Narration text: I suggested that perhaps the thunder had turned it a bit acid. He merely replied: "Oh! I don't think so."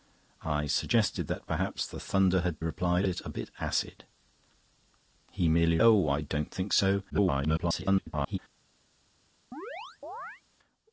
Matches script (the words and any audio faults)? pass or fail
fail